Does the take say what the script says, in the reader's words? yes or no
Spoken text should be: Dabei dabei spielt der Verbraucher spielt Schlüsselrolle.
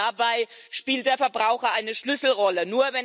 no